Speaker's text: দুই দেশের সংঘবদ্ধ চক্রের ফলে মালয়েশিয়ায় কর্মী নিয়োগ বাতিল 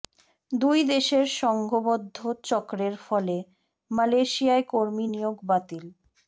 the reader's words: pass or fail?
pass